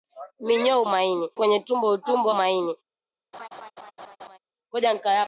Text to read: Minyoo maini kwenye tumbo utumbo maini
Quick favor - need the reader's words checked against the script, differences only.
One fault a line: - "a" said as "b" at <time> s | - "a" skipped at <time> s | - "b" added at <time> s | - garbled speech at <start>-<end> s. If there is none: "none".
none